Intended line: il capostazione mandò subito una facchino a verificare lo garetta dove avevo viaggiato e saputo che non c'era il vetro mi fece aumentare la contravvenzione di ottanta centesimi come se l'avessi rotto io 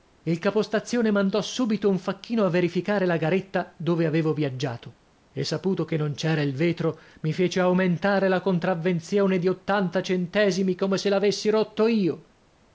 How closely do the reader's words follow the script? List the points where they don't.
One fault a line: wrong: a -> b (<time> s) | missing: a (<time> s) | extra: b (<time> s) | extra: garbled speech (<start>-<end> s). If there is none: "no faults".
wrong: una -> un (1.9 s)
wrong: lo -> la (3.0 s)